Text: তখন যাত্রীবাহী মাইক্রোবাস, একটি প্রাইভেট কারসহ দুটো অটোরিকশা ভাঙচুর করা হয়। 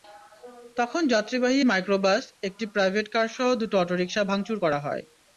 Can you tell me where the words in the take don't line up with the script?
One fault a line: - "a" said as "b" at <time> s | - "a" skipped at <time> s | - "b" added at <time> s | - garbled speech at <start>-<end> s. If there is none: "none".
none